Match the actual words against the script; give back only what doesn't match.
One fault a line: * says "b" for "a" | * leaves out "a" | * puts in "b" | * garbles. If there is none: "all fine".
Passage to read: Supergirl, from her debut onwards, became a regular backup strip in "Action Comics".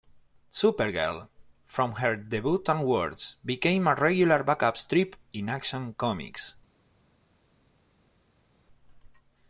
all fine